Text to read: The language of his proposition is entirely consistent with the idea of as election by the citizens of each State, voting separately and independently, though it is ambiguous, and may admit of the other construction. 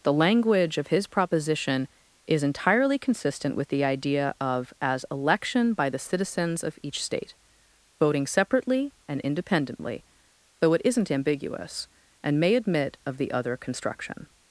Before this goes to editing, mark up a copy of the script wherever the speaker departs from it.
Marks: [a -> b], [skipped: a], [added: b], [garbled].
The language of his proposition is entirely consistent with the idea of as election by the citizens of each State, voting separately and independently, though it [is -> isn't] ambiguous, and may admit of the other construction.